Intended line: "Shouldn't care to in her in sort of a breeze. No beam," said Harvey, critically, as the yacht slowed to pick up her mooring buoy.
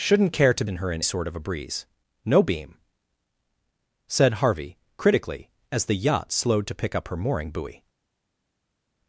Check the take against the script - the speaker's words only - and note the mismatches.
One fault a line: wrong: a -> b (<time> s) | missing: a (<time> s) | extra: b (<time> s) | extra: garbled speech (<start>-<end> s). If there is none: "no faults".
no faults